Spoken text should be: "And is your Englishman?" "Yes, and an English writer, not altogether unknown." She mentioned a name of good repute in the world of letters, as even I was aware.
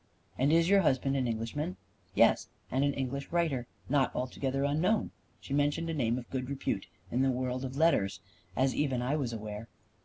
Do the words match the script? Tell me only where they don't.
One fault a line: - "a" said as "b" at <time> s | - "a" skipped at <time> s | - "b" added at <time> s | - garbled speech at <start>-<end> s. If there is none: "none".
- "husband an" added at 0.8 s